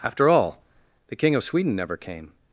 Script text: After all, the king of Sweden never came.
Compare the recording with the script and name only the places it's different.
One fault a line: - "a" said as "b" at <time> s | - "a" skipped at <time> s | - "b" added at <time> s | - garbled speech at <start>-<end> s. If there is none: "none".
none